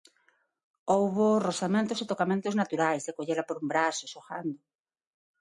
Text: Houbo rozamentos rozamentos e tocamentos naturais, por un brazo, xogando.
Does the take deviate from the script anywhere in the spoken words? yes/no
yes